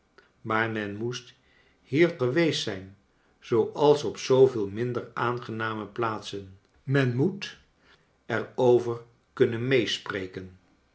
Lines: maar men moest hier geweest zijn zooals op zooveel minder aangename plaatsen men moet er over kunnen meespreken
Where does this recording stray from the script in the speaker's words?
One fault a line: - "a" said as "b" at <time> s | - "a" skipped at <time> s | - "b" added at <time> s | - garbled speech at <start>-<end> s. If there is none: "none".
none